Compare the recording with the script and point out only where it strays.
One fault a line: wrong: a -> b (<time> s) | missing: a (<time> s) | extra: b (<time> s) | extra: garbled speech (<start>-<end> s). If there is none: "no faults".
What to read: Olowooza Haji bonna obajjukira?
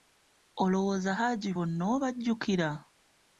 no faults